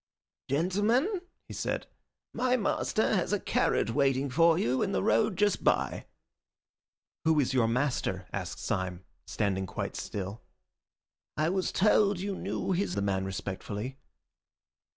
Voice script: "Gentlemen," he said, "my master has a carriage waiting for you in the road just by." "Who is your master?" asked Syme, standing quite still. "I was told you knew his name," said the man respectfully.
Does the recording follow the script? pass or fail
fail